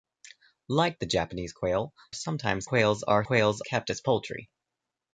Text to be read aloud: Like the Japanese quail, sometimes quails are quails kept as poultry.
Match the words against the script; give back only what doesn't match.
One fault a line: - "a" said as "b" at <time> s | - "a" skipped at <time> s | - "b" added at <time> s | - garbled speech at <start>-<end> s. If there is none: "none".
none